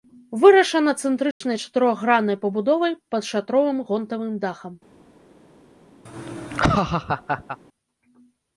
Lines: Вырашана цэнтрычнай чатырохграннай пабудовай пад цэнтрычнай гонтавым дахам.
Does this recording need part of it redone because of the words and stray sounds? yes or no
yes